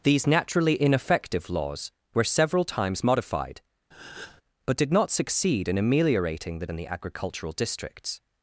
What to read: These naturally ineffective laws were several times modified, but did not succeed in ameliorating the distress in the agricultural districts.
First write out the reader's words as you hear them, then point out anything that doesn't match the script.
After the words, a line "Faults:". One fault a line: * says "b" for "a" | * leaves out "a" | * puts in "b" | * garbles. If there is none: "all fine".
These naturally ineffective laws were several times modified, but did not succeed in ameliorating the in the agricultural districts.
Faults:
* leaves out "distress"